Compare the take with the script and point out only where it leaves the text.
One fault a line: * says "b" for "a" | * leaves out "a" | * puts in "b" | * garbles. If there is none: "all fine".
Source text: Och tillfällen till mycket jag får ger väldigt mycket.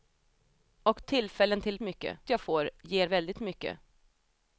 all fine